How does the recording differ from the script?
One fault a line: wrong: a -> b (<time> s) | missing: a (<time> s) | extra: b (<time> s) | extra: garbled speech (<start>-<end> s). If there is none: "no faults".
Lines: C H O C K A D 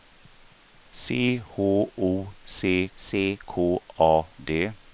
extra: C (2.9 s)